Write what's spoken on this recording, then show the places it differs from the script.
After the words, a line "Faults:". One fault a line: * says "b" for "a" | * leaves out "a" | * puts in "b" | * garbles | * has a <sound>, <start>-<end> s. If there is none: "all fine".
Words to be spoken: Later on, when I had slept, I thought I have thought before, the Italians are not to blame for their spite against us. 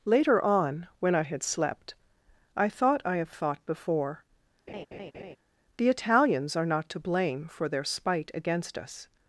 Later on, when I had slept, I thought I have thought before, the Italians are not to blame for their spite against us.
Faults:
* has a laugh, 4.7-5.4 s